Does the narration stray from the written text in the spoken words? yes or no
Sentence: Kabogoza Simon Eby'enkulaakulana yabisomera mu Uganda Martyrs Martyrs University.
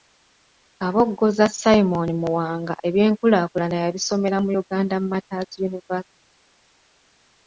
yes